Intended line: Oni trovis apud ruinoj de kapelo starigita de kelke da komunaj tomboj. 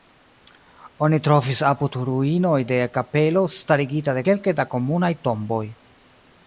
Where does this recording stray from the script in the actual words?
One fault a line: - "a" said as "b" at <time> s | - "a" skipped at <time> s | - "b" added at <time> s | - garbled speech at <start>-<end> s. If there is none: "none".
none